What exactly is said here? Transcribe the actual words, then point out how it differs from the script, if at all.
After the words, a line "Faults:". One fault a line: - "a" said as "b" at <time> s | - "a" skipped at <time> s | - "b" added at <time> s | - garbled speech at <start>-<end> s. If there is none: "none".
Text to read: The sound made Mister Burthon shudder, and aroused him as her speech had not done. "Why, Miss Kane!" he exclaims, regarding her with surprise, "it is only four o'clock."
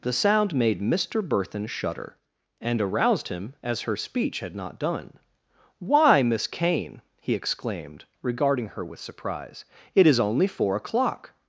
The sound made Mister Burthon shudder, and aroused him as her speech had not done. "Why, Miss Kane!" he exclaimed, regarding her with surprise, "it is only four o'clock."
Faults:
- "exclaims" said as "exclaimed" at 7.3 s